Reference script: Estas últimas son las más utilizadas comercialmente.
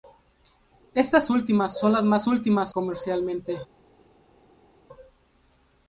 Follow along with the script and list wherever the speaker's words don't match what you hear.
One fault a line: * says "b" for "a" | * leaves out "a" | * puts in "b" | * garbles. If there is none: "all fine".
* says "últimas" for "utilizadas"